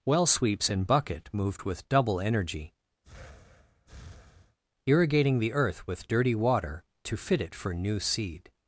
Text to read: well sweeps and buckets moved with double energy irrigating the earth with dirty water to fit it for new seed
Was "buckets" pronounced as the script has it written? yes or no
no